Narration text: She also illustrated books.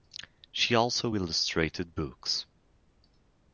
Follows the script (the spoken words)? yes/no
yes